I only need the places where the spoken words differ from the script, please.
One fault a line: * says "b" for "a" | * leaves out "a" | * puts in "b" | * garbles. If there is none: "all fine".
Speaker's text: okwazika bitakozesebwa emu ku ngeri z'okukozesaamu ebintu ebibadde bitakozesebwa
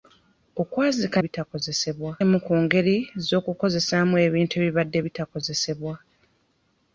all fine